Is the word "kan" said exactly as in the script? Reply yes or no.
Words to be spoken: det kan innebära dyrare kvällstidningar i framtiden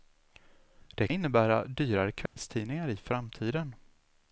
no